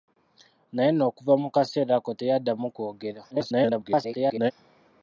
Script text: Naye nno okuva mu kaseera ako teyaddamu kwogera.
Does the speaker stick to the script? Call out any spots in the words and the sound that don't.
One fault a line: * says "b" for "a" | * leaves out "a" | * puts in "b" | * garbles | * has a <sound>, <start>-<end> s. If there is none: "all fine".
* garbles